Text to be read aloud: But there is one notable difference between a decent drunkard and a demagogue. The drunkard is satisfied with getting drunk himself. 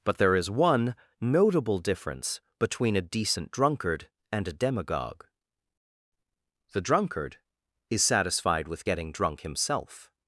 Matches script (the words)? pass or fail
pass